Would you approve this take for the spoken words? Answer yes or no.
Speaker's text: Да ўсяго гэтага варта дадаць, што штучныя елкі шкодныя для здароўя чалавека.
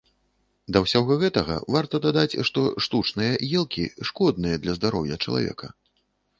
yes